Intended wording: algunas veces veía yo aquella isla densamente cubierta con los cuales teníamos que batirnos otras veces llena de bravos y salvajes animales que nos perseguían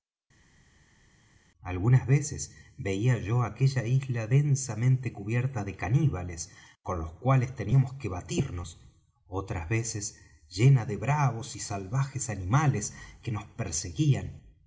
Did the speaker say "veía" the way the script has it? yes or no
yes